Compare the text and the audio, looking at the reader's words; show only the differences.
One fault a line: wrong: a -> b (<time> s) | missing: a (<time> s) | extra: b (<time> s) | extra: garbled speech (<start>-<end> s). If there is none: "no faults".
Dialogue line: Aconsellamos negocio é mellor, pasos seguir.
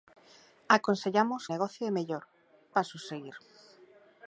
no faults